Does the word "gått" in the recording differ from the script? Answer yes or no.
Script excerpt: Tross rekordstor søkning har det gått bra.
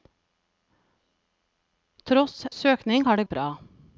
yes